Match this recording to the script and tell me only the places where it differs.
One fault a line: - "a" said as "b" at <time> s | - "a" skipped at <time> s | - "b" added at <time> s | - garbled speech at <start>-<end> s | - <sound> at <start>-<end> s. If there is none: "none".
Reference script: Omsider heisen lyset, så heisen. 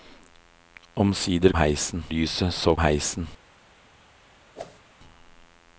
- whoosh at 4.5-4.8 s